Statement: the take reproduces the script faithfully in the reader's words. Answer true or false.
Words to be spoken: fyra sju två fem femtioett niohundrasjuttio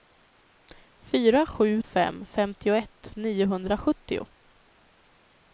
false